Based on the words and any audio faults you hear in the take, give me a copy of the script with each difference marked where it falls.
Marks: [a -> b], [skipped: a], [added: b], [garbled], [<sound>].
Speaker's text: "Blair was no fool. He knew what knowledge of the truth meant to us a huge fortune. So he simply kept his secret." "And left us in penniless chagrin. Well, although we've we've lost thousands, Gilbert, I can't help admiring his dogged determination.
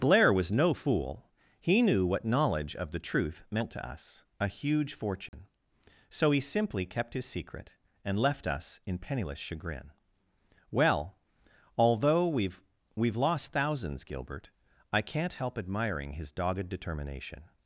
"Blair was no fool. He knew what knowledge of the truth meant to us a huge fortune. [dropout] So he simply kept his secret." "And left us in penniless chagrin. Well, although we've we've lost thousands, Gilbert, I can't help admiring his dogged determination.